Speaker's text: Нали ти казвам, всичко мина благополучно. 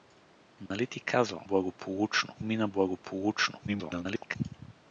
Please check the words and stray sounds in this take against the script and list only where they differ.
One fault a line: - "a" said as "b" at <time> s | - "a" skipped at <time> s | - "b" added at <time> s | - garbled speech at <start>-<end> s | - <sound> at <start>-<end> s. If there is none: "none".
- dropout at 0.7-0.7 s
- "всичко" said as "благополучно" at 1.4 s
- garbled speech at 3.7-4.4 s